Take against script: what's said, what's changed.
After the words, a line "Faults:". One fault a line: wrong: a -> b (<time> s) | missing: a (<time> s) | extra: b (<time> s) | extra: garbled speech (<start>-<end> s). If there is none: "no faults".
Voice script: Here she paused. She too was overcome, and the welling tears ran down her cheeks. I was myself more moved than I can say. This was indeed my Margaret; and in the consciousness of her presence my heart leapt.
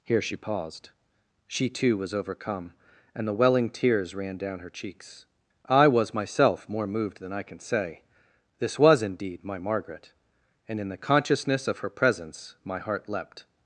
Here she paused. She too was overcome, and the welling tears ran down her cheeks. I was myself more moved than I can say. This was indeed my Margaret; and in the consciousness of her presence my heart leapt.
Faults:
no faults